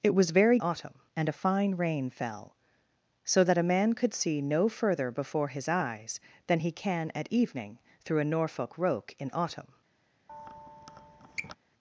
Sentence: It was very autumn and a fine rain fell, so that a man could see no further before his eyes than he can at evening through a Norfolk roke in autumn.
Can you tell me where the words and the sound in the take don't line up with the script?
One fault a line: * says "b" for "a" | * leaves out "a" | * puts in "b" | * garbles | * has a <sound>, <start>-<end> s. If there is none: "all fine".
* has a squeak, 10.3-11.6 s